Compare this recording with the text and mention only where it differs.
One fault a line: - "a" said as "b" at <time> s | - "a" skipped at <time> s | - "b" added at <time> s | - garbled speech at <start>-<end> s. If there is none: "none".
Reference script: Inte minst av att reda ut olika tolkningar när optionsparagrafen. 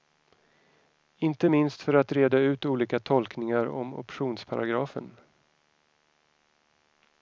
- "av" said as "för" at 1.8 s
- "när" said as "om" at 3.7 s